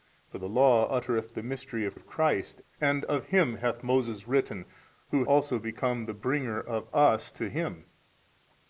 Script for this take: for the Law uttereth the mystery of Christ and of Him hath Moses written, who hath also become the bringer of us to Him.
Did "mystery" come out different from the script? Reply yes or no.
no